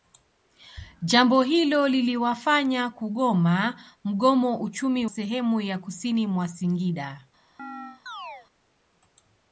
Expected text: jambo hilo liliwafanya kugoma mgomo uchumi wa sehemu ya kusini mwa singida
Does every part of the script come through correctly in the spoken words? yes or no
no